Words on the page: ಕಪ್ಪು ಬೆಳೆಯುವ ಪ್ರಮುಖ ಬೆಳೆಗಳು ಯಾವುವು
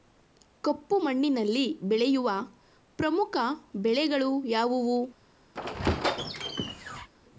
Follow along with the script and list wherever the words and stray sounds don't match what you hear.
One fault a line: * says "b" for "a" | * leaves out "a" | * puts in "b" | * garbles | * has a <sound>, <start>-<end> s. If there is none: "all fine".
* puts in "ಮಣ್ಣಿನಲ್ಲಿ"
* has a squeak, 5.5-7.1 s